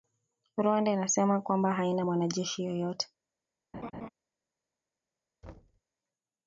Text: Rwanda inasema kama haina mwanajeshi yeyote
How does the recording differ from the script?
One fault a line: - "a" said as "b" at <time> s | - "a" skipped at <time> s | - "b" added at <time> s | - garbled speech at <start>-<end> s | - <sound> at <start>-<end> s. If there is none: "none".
- "kama" said as "kwamba" at 1.4 s
- laugh at 3.7-4.1 s
- thud at 5.4-5.8 s